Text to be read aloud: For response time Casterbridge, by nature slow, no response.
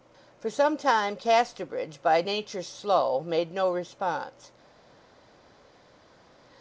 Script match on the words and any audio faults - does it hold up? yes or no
no